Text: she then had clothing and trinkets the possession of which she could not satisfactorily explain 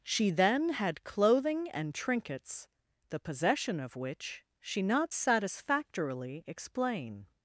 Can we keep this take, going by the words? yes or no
no